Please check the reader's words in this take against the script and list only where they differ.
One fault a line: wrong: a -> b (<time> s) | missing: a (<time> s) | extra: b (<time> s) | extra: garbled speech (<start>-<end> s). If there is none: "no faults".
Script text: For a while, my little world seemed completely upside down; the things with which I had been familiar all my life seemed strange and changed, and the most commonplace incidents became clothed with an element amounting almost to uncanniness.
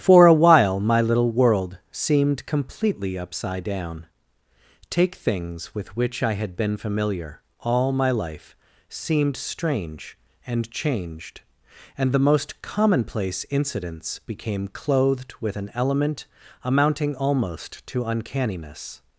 wrong: the -> take (4.9 s)